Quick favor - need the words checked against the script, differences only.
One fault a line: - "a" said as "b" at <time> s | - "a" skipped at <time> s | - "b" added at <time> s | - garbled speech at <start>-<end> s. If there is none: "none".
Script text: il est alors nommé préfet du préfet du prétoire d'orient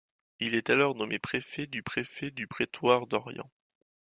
none